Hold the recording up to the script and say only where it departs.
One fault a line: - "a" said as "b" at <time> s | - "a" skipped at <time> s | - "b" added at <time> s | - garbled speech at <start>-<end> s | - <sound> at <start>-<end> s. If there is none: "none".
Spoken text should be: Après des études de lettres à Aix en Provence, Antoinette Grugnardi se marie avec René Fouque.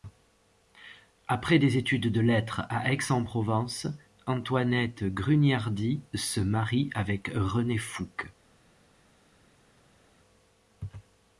none